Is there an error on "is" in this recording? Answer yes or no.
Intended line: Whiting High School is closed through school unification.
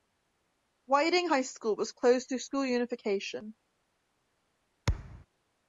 yes